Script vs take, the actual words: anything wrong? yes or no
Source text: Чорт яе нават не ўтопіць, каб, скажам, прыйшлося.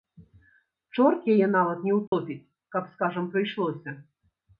no